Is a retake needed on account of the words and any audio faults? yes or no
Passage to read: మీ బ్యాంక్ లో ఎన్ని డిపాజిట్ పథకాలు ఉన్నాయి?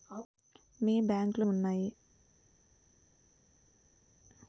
yes